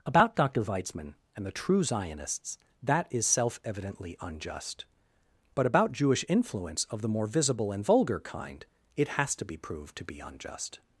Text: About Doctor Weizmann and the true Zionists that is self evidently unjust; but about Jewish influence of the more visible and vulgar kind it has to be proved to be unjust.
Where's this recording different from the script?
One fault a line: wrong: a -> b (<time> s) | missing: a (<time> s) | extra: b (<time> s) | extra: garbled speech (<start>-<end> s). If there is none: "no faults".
no faults